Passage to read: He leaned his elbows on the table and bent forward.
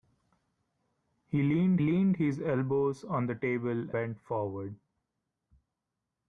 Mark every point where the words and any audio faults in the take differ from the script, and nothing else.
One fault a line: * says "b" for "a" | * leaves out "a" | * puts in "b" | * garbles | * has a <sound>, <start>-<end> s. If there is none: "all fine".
* puts in "leaned"
* leaves out "and"